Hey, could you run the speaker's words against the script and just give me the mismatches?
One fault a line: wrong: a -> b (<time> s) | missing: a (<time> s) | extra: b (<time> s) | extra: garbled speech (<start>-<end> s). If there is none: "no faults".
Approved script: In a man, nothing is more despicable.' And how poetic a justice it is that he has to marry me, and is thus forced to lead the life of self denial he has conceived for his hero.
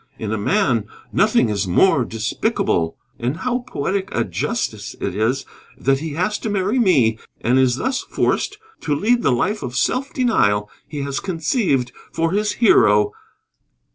no faults